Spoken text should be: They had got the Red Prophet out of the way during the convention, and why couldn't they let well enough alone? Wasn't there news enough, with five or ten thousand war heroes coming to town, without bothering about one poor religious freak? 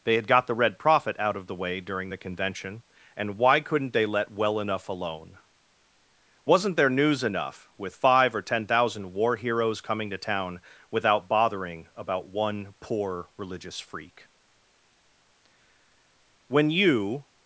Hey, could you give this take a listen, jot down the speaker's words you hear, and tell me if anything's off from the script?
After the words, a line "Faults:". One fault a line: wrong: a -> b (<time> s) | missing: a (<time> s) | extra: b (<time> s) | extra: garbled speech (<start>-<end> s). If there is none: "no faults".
They had got the Red Prophet out of the way during the convention, and why couldn't they let well enough alone? Wasn't there news enough, with five or ten thousand war heroes coming to town, without bothering about one poor religious freak? When you
Faults:
extra: When you (16.5 s)